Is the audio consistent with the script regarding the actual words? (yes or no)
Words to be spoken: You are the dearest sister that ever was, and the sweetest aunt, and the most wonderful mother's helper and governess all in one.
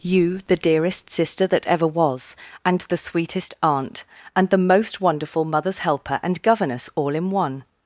no